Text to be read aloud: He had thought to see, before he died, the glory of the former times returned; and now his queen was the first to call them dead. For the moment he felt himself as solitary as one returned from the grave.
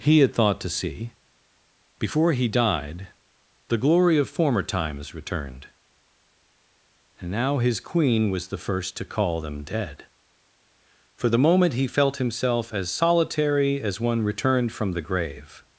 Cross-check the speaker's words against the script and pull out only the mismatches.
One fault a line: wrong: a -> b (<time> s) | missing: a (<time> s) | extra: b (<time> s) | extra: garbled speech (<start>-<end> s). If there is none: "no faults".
missing: the (4.3 s)